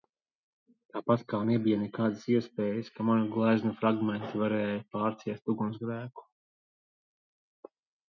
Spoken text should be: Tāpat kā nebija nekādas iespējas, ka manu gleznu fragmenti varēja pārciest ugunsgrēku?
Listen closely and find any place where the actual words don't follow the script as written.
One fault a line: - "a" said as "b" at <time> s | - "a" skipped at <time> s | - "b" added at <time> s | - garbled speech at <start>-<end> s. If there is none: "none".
none